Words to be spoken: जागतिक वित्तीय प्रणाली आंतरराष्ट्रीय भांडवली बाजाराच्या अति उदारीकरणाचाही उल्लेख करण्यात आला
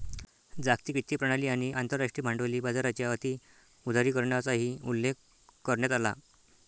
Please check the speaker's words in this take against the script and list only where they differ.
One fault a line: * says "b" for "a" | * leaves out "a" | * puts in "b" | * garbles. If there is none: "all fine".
* puts in "आणि"